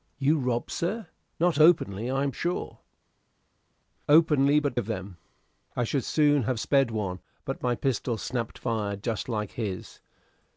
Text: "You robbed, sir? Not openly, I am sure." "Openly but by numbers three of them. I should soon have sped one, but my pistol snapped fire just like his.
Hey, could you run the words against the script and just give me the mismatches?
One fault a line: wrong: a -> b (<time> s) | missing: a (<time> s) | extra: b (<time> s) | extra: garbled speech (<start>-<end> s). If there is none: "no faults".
missing: by numbers three (4.8 s)